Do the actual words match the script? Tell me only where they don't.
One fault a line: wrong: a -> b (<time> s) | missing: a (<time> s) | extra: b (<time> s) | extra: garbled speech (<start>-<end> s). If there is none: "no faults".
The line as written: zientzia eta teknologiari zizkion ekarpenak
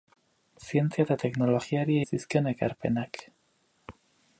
no faults